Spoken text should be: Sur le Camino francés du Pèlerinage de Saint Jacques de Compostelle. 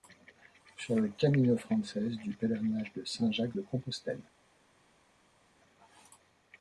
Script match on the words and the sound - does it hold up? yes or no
yes